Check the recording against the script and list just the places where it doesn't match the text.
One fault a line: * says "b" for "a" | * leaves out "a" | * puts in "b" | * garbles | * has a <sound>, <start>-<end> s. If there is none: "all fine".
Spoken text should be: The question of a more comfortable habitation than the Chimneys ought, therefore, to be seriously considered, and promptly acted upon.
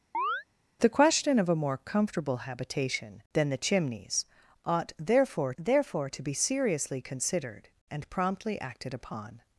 * has a chirp, 0.1-0.4 s
* puts in "therefore"